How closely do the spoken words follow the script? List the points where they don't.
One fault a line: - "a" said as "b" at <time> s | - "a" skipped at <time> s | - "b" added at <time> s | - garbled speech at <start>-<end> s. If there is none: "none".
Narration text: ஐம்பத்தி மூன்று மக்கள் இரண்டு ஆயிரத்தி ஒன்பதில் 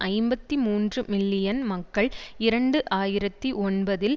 - "மில்லியன்" added at 1.1 s